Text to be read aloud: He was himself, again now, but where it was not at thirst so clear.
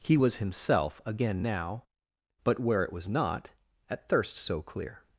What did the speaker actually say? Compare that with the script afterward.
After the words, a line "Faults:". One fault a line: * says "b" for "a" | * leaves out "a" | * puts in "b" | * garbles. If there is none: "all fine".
He was himself, again now, but where it was not at thirst so clear.
Faults:
all fine